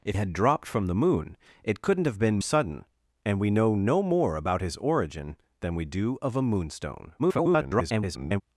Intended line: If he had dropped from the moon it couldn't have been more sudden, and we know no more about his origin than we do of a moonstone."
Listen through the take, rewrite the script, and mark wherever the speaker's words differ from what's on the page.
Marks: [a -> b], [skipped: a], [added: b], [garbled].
If [skipped: he] had dropped from the moon it couldn't have been [skipped: more] sudden, and we know no more about his origin than we do of a moonstone." [garbled]